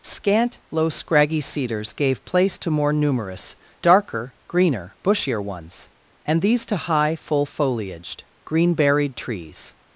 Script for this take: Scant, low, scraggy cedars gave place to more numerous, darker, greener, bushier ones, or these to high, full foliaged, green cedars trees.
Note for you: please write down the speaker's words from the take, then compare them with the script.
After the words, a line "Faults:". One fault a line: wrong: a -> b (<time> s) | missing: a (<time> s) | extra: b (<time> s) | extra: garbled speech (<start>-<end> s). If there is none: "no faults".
Scant, low, scraggy cedars gave place to more numerous, darker, greener, bushier ones, and these to high, full foliaged, green berried trees.
Faults:
wrong: or -> and (6.2 s)
wrong: cedars -> berried (8.7 s)